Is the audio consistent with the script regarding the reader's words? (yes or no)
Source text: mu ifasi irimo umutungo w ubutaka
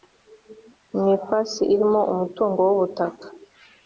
yes